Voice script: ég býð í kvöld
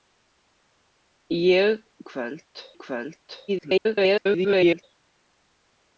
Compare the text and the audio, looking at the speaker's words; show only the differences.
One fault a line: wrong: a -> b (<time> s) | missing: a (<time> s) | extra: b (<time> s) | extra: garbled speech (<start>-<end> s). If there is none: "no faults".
wrong: býð -> kvöld (2.1 s)
extra: garbled speech (3.5-4.8 s)